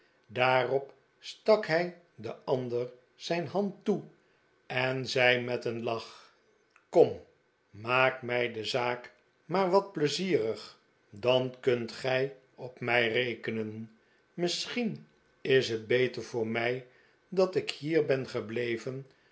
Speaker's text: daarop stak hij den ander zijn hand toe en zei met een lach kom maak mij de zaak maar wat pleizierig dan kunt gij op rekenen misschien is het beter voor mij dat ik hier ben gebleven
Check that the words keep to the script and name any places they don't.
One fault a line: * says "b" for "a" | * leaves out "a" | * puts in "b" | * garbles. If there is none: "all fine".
* puts in "mij"